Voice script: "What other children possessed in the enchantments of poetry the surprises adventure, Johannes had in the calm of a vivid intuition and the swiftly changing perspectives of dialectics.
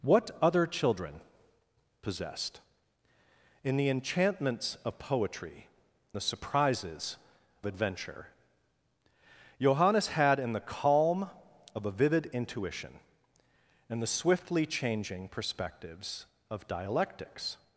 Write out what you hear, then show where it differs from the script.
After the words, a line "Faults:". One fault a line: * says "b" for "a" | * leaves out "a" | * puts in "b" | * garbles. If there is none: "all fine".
"What other children possessed in the enchantments of poetry the surprises adventure, Johannes had in the calm of a vivid intuition and the swiftly changing perspectives of dialectics.
Faults:
all fine